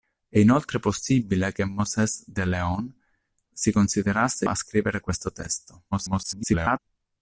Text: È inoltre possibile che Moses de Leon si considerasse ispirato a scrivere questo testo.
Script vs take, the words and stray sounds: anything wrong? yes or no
yes